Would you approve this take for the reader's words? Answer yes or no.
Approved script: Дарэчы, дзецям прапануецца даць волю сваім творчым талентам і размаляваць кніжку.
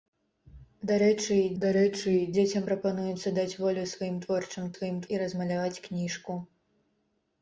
no